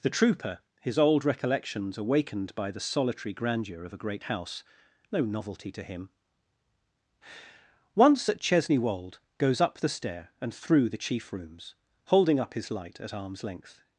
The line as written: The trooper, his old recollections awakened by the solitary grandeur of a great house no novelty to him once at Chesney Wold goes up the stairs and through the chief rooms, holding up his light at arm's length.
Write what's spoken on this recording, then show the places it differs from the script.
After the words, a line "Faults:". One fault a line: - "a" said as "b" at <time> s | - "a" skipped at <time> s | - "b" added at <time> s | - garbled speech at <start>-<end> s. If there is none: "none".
The trooper, his old recollections awakened by the solitary grandeur of a great house no novelty to him once at Chesney Wold goes up the stair and through the chief rooms, holding up his light at arm's length.
Faults:
- "stairs" said as "stair" at 9.9 s